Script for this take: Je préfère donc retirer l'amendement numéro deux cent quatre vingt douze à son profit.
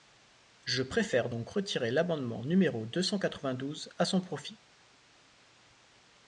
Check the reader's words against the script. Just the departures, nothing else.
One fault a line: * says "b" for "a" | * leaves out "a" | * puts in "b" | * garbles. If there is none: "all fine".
all fine